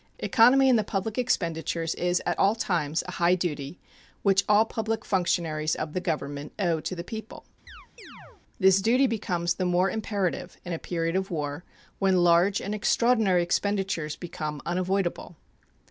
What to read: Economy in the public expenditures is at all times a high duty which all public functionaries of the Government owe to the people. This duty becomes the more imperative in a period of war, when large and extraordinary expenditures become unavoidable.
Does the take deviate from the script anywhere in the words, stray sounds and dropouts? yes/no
yes